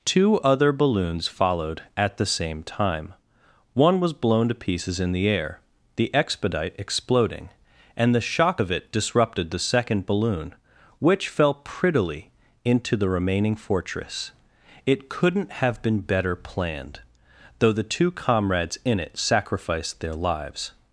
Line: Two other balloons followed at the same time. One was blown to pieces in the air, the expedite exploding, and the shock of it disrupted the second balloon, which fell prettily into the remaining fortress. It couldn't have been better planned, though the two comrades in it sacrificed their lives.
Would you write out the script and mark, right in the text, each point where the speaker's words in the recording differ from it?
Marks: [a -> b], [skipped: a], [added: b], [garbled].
Two other balloons followed at the same time. One was blown to pieces in the air, the expedite exploding, and the shock of it disrupted the second balloon, which fell prettily into the remaining fortress. It couldn't have been better planned, though the two comrades in it sacrificed their lives.